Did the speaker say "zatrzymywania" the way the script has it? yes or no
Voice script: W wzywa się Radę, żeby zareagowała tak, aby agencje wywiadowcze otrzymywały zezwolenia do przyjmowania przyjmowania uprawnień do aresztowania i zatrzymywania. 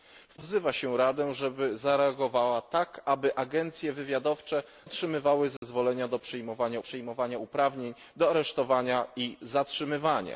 yes